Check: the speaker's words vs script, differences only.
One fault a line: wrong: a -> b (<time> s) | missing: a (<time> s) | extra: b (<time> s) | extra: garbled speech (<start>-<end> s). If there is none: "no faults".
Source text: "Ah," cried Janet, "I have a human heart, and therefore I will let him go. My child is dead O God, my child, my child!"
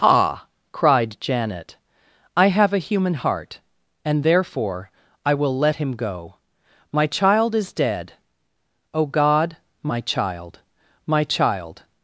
no faults